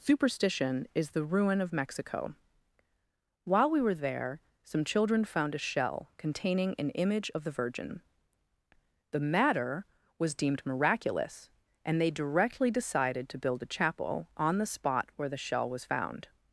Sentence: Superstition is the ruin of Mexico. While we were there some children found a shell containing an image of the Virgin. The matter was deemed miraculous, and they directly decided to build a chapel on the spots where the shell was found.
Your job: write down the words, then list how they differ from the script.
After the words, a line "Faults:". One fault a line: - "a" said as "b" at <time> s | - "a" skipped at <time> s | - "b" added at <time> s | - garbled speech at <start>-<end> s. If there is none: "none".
Superstition is the ruin of Mexico. While we were there some children found a shell containing an image of the Virgin. The matter was deemed miraculous, and they directly decided to build a chapel on the spot where the shell was found.
Faults:
- "spots" said as "spot" at 14.7 s